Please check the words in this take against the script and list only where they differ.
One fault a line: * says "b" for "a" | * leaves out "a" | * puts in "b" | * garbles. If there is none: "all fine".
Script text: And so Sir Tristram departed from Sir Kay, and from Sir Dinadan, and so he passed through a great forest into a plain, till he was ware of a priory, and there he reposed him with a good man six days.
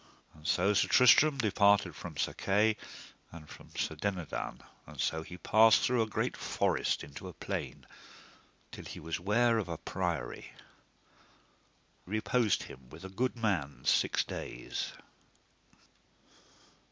* leaves out "and there he"